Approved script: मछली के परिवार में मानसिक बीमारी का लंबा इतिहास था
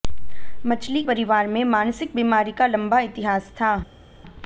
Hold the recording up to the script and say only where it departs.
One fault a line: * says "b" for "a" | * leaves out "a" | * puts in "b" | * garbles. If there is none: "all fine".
* leaves out "के"